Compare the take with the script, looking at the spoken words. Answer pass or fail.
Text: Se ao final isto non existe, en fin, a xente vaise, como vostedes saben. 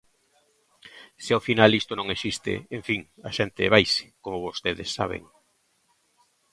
pass